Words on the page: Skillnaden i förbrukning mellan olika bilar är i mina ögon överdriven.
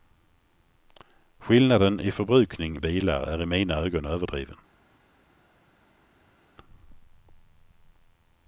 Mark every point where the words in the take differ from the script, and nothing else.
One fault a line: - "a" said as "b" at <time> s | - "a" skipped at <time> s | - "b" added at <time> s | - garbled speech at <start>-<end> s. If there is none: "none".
- "mellan olika" skipped at 2.8 s